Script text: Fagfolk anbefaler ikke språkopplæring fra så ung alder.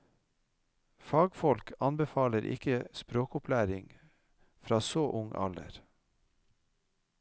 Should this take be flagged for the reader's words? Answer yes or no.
no